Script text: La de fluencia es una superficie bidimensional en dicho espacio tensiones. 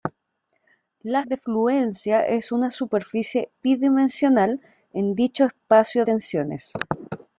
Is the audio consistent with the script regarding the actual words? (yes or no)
yes